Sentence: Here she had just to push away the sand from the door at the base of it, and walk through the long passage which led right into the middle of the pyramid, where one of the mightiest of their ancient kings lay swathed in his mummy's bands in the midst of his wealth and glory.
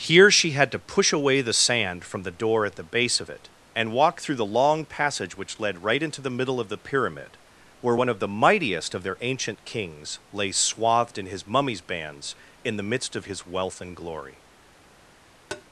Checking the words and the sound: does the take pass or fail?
fail